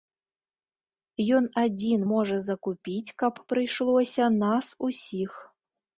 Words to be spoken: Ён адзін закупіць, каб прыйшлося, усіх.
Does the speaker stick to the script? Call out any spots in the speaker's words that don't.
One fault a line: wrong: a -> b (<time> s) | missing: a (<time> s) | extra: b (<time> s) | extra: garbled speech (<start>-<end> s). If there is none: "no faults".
extra: можа (2.1 s)
extra: нас (4.5 s)